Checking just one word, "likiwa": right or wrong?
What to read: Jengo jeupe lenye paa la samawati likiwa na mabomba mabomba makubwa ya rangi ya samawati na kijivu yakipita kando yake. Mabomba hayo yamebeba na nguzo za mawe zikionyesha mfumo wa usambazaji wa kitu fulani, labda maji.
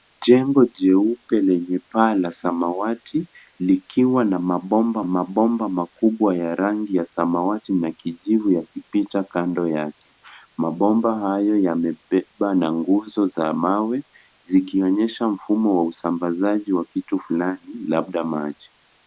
right